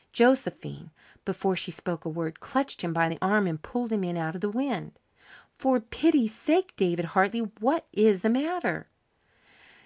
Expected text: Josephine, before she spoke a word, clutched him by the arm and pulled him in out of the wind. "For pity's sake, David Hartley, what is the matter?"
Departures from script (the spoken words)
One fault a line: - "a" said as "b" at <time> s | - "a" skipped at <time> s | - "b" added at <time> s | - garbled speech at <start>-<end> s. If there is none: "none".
none